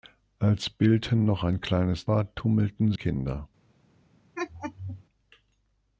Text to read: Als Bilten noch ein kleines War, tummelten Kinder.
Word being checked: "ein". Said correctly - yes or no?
yes